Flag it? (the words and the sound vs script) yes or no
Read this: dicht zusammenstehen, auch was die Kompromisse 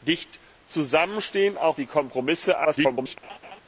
yes